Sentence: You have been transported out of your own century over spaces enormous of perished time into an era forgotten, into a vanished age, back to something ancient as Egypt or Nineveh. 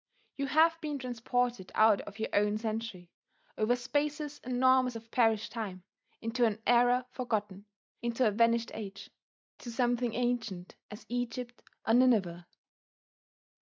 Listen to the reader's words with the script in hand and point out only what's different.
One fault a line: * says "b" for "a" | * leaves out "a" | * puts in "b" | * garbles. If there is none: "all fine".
* leaves out "back"